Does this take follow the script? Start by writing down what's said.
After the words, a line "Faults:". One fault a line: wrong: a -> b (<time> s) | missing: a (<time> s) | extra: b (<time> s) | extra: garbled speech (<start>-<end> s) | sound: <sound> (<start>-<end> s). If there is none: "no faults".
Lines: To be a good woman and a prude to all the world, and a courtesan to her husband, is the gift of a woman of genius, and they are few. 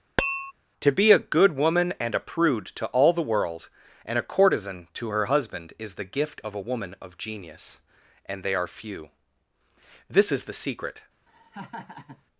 To be a good woman and a prude to all the world, and a courtesan to her husband, is the gift of a woman of genius, and they are few. This is the secret
Faults:
sound: tap (0.2-0.5 s)
extra: This is the secret (10.1 s)
sound: laugh (11.3-12.2 s)